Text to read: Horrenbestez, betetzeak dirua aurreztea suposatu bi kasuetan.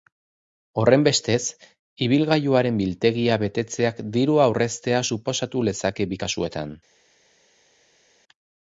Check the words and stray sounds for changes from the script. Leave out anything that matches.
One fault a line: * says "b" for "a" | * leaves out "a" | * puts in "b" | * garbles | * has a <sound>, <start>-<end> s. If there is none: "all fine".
* puts in "ibilgailuaren biltegia"
* puts in "lezake"